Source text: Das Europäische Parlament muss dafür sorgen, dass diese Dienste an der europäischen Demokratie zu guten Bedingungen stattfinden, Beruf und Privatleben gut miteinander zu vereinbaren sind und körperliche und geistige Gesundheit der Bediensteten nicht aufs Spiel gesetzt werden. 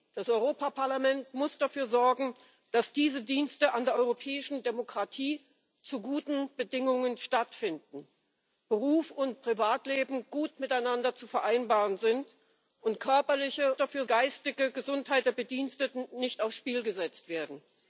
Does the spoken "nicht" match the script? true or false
true